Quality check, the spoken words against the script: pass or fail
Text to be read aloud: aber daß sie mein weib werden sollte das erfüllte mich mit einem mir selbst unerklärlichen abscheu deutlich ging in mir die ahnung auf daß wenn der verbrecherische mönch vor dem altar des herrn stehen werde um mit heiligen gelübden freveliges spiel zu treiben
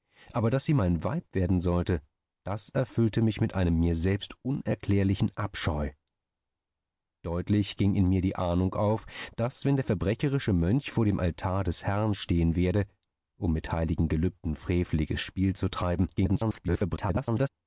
fail